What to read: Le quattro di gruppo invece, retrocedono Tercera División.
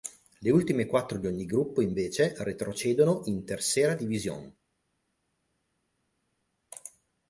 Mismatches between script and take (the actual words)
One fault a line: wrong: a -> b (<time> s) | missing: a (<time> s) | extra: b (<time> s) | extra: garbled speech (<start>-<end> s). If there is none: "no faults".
extra: ultime (0.5 s)
extra: ogni (1.3 s)
extra: in (3.3 s)